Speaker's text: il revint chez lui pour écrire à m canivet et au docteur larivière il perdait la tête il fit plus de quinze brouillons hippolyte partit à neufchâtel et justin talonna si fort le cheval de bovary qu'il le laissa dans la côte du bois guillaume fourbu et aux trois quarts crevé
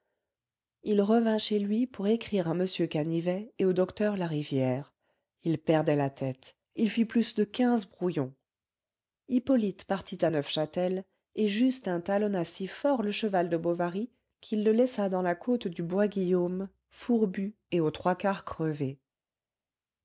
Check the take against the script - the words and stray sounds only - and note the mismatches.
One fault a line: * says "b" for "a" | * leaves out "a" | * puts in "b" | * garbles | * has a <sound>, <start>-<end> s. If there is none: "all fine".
all fine